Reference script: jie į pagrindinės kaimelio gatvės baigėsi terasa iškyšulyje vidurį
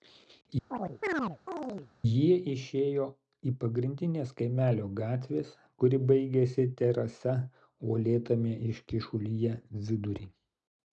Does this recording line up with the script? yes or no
no